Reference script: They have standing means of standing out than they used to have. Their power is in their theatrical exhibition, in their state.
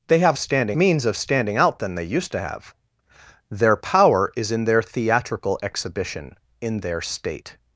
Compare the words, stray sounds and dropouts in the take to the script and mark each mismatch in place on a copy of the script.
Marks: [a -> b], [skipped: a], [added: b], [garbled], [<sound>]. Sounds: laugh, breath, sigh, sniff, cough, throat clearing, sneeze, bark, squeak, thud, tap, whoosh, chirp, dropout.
They have standing means of standing out than they used to have. Their power is in their theatrical exhibition, in their state.